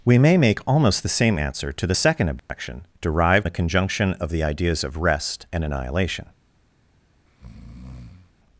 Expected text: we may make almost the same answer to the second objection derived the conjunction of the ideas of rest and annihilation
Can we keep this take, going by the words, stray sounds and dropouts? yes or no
no